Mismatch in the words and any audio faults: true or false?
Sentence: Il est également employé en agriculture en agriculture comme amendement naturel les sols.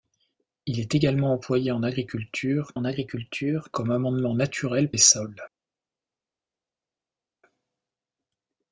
false